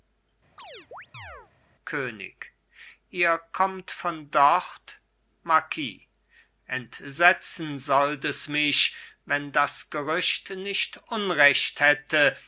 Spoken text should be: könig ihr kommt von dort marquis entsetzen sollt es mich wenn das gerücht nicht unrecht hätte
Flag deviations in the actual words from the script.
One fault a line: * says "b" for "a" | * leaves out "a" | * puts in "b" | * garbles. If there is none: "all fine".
all fine